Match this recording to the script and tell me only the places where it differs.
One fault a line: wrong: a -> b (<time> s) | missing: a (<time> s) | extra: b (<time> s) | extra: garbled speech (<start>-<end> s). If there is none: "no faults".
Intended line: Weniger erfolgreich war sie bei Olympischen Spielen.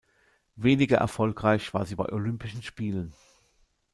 no faults